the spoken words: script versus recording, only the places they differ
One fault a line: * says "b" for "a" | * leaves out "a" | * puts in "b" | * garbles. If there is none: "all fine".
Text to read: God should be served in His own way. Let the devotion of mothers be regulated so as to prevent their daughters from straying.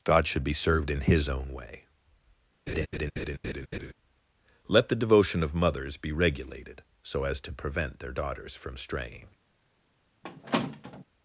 all fine